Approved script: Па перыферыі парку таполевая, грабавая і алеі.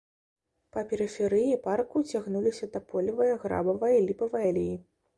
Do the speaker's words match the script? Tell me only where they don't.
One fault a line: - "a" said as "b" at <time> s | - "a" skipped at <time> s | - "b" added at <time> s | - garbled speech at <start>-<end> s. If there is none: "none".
- "цягнуліся" added at 2.1 s
- "ліпавая" added at 4.1 s